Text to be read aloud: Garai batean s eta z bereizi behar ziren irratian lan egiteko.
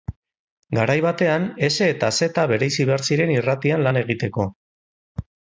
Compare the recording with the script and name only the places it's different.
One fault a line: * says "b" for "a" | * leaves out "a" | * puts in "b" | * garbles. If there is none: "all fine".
all fine